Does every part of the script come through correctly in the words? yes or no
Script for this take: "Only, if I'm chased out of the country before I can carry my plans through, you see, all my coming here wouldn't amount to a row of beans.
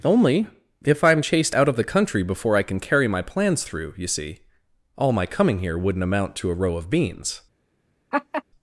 yes